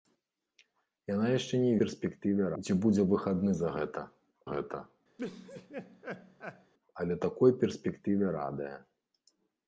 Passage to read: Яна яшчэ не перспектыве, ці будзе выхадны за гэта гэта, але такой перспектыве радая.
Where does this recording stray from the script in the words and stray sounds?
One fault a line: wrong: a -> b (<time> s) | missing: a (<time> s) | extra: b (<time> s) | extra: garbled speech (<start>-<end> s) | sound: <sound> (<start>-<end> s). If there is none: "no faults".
sound: laugh (5.2-6.7 s)